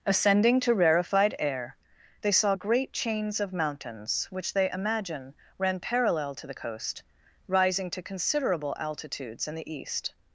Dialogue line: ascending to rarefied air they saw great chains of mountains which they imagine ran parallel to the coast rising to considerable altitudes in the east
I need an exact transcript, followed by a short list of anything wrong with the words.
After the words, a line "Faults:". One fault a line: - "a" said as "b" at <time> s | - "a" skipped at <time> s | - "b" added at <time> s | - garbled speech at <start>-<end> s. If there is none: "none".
ascending to rarefied air they saw great chains of mountains which they imagine ran parallel to the coast rising to considerable altitudes in the east
Faults:
none